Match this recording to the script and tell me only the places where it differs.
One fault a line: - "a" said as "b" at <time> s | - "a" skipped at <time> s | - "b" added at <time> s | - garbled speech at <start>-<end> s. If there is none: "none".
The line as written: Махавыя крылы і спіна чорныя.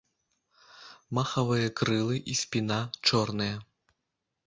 none